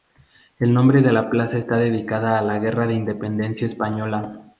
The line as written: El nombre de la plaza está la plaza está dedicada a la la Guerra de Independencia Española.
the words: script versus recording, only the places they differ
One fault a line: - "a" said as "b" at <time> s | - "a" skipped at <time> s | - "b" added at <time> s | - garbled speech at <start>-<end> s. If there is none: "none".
- "la plaza está" skipped at 1.8 s
- "la" skipped at 2.6 s